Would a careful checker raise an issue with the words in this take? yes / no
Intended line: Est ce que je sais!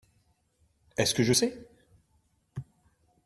no